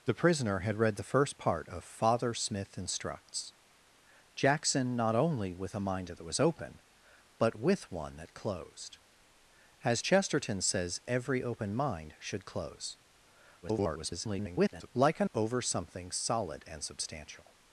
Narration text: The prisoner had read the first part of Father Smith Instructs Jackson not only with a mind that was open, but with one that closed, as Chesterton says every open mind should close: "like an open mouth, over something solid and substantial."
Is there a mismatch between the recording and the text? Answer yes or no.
yes